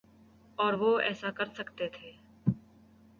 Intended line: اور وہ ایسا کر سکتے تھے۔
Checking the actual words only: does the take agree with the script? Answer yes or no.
yes